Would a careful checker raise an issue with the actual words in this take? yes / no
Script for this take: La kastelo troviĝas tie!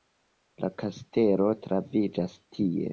no